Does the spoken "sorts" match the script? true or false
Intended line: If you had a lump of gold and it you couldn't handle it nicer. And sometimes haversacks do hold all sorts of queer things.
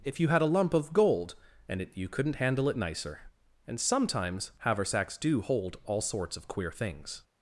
true